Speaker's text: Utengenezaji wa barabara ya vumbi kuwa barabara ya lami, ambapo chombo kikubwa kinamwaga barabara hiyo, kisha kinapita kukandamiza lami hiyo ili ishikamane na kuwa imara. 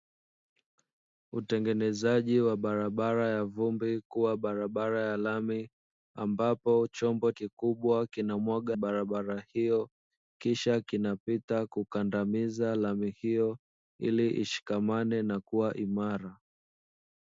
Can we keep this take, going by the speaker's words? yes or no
yes